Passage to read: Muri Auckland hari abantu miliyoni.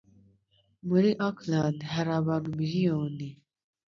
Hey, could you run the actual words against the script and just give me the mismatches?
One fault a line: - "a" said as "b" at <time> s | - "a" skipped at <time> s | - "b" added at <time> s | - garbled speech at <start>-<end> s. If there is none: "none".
none